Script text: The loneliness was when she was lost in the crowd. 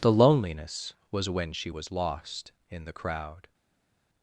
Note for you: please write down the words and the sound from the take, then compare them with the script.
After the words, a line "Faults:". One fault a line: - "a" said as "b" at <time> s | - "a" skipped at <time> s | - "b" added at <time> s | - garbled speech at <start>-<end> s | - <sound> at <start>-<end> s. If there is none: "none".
The loneliness was when she was lost in the crowd.
Faults:
none